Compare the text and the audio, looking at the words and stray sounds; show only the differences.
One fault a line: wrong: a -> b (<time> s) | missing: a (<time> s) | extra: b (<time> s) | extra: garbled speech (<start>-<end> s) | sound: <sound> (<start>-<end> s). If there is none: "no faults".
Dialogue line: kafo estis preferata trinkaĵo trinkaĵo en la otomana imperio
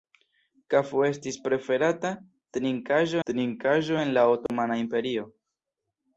sound: dropout (4.5-4.5 s)